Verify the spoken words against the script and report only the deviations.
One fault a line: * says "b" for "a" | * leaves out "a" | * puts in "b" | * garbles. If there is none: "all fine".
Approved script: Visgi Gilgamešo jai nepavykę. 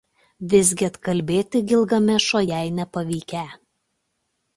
* puts in "atkalbėti"